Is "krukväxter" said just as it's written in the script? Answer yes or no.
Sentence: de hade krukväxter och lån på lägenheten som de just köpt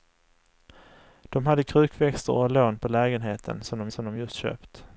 yes